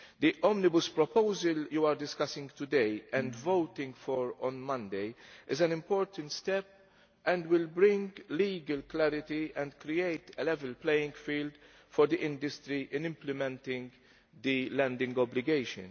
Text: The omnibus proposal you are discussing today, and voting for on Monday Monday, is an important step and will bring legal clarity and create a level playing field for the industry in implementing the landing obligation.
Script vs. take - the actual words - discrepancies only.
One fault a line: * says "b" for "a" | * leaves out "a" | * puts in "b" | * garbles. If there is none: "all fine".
* leaves out "Monday"